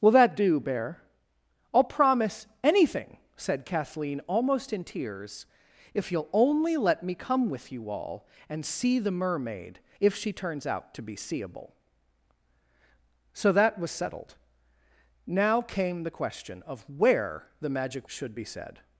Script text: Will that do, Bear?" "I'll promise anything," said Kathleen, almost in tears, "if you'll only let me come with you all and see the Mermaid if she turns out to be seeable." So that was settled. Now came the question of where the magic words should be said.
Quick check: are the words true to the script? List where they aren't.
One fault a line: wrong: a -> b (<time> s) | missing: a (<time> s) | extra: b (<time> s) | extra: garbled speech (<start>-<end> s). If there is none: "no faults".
missing: words (18.1 s)